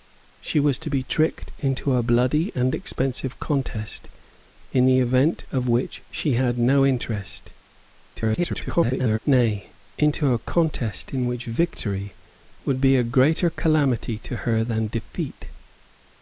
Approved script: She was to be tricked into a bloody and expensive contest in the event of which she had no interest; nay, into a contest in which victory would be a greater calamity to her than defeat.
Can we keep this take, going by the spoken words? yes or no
no